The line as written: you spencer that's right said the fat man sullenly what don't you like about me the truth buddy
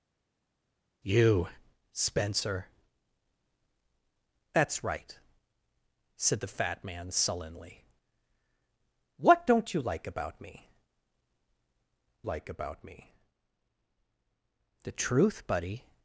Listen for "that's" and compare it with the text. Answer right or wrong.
right